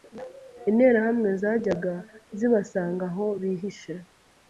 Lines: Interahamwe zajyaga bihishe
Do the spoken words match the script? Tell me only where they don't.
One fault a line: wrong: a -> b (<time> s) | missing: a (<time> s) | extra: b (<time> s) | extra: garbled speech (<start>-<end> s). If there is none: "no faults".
extra: zibasanga aho (2.4 s)